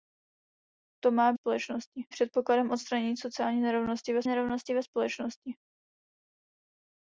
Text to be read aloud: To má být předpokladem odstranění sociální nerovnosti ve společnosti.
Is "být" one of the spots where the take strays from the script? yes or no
yes